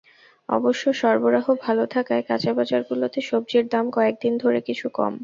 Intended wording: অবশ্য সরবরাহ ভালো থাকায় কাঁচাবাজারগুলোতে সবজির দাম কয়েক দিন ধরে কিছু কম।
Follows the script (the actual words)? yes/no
yes